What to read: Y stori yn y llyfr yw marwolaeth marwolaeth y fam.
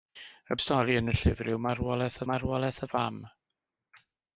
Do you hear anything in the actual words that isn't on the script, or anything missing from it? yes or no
no